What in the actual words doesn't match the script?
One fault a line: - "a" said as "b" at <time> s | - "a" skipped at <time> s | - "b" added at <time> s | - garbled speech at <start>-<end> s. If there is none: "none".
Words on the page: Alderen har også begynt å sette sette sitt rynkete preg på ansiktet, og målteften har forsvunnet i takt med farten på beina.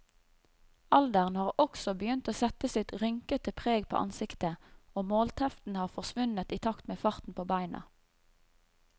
- "sette" skipped at 2.7 s